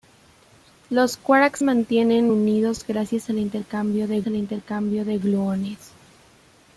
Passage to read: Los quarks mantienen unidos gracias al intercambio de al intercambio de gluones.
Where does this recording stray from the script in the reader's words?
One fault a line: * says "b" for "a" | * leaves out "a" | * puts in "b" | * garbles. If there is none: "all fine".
all fine